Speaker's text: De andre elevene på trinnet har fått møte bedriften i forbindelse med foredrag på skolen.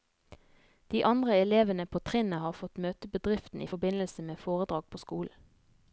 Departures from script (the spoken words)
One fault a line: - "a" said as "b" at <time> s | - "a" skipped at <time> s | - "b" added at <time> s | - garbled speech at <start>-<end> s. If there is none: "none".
none